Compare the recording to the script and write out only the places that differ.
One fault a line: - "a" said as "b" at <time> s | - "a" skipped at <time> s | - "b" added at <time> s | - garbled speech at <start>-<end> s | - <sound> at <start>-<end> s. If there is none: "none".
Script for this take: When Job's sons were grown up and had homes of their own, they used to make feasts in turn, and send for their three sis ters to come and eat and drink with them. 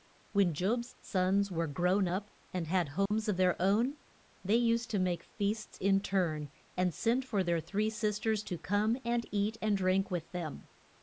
- dropout at 3.1-3.1 s